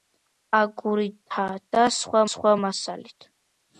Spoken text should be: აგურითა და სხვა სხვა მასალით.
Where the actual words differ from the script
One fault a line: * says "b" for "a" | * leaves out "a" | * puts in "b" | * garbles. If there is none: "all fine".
all fine